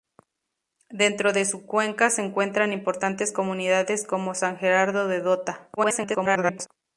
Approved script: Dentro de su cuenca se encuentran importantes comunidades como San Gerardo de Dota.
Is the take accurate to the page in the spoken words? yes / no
no